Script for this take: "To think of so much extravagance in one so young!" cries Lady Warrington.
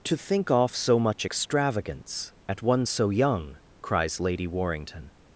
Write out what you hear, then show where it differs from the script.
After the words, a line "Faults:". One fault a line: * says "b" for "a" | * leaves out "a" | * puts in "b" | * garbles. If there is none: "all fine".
"To think off so much extravagance at one so young!" cries Lady Warrington.
Faults:
* says "off" for "of"
* says "at" for "in"